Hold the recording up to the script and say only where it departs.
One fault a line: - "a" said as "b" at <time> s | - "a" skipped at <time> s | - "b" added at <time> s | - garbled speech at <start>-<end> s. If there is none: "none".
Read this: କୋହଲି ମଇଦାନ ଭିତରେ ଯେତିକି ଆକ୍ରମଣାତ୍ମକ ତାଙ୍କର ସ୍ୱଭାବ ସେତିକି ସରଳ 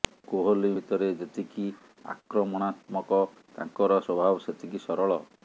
- "ମଇଦାନ" skipped at 0.7 s